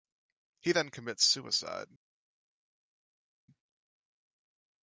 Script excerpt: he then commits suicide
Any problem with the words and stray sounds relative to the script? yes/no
no